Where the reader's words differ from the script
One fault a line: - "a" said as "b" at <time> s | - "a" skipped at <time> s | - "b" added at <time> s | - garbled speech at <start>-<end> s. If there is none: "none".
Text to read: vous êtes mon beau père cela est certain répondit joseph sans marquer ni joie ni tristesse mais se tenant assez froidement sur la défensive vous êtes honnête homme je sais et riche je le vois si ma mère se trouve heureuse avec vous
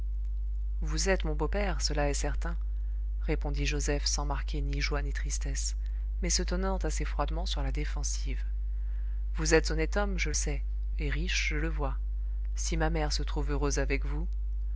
none